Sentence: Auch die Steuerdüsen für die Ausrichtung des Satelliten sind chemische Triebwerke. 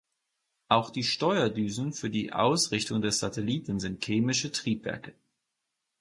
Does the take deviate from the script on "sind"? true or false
false